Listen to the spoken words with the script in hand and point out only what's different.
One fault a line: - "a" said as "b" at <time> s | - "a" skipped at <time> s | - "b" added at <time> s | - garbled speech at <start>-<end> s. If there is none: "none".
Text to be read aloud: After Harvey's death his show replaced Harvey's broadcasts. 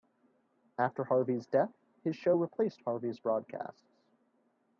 none